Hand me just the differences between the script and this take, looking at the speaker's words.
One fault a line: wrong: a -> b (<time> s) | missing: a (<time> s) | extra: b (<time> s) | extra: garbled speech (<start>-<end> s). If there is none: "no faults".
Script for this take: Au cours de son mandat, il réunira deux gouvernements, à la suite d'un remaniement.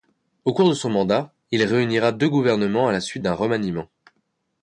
no faults